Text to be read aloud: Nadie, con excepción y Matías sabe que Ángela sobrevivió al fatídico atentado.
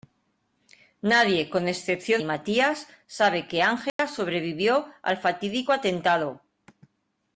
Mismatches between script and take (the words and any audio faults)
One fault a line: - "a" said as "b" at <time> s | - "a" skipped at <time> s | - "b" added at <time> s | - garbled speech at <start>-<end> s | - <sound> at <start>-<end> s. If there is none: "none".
- dropout at 3.9-4.0 s